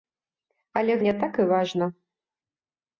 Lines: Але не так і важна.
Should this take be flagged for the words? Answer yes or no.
no